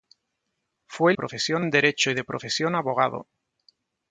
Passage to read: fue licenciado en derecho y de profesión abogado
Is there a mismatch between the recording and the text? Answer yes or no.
yes